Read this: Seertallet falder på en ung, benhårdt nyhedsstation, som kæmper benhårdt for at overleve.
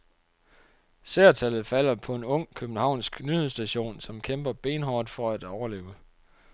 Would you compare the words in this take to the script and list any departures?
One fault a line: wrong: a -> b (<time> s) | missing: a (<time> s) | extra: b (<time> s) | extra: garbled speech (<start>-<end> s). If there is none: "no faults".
wrong: benhårdt -> københavnsk (2.5 s)